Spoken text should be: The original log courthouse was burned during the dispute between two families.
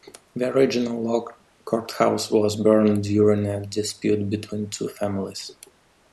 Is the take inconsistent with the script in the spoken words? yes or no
yes